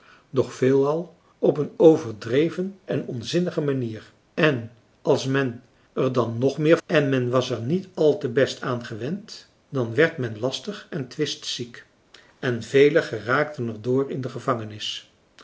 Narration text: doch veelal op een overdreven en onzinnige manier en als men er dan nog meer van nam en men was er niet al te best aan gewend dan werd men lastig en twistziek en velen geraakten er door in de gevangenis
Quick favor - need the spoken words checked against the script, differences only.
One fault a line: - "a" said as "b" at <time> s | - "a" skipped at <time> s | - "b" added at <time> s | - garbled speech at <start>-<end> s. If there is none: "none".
- "van nam" skipped at 6.8 s